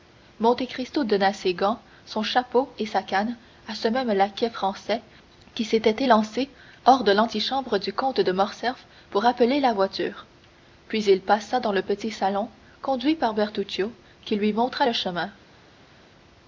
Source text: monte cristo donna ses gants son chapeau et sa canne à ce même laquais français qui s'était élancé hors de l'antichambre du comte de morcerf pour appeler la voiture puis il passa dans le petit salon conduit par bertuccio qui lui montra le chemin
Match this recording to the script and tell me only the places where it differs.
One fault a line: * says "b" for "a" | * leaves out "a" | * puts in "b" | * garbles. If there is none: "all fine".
all fine